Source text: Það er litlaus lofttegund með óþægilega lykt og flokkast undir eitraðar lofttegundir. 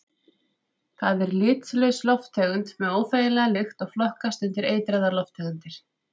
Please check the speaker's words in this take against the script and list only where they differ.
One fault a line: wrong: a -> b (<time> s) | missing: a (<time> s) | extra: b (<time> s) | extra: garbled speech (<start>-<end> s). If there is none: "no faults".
no faults